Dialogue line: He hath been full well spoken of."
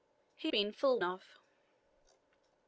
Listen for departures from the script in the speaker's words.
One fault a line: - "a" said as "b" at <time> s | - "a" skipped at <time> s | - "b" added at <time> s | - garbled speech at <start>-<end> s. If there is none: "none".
- "hath" skipped at 0.5 s
- "well spoken" skipped at 1.0 s